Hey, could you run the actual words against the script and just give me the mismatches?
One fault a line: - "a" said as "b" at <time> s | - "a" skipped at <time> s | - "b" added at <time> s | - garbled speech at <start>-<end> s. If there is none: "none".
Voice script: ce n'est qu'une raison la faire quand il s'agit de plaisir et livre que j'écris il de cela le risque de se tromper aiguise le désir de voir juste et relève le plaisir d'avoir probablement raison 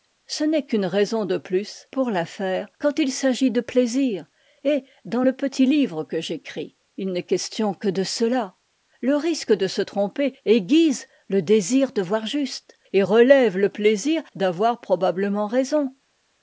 - "de plus pour" added at 1.2 s
- "dans le petit" added at 5.0 s
- "n'est question que" added at 7.1 s